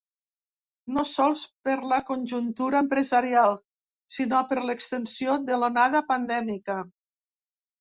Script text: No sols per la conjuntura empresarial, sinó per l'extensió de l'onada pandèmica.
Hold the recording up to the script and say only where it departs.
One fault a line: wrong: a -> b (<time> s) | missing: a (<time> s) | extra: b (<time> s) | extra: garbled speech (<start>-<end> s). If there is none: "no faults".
no faults